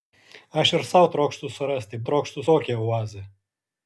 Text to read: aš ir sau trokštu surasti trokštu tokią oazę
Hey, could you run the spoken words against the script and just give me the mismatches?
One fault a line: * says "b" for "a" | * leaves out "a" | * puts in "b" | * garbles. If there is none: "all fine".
all fine